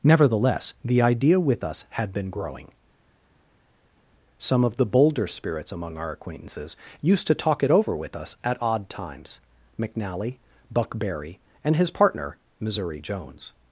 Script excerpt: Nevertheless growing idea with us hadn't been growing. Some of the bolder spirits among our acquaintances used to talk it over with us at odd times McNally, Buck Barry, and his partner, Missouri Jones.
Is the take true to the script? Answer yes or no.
no